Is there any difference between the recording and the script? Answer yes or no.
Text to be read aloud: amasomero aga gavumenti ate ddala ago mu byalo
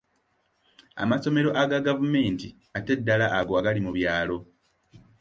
yes